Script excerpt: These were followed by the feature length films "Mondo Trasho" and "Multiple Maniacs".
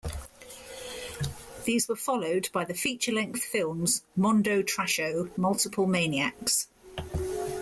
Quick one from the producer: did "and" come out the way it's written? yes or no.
no